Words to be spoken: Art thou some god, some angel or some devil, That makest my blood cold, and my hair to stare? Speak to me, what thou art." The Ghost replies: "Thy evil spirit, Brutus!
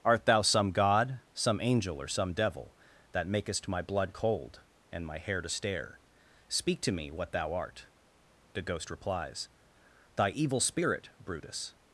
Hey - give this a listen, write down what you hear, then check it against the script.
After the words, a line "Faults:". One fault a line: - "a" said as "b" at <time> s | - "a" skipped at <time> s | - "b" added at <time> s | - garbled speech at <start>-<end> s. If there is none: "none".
Art thou some god, some angel or some devil, That makest my blood cold, and my hair to stare? Speak to me, what thou art." The Ghost replies: "Thy evil spirit, Brutus!
Faults:
none